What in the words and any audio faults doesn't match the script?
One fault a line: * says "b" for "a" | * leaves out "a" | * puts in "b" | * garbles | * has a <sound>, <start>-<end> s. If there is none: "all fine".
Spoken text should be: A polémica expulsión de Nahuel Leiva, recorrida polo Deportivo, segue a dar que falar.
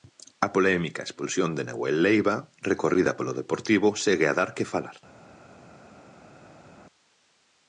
all fine